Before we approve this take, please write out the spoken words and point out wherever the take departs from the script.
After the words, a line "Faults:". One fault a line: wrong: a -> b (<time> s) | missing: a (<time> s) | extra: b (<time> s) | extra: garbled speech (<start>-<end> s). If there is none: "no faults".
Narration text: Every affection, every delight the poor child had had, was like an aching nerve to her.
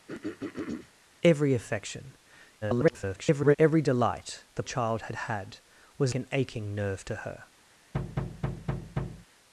Every affection, [garbled] every delight the child had had, was an aching nerve to her.
Faults:
extra: garbled speech (2.6-3.6 s)
missing: poor (4.6 s)
missing: like (6.1 s)